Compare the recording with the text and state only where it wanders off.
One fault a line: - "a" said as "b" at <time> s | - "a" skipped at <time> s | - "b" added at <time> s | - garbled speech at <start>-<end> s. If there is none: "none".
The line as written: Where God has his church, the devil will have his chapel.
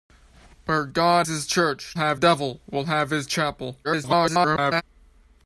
- "has" skipped at 1.3 s
- "the" said as "have" at 1.9 s
- garbled speech at 3.8-4.8 s